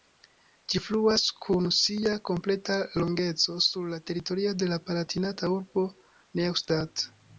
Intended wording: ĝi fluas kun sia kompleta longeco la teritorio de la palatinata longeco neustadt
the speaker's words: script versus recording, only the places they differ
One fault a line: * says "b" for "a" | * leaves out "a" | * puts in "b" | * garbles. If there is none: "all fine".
* puts in "sur"
* says "urbo" for "longeco"